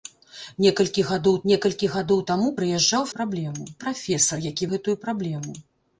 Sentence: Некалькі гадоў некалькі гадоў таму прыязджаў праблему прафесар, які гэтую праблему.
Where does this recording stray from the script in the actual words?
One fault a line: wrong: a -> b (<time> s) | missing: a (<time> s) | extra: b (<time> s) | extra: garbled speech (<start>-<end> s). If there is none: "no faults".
no faults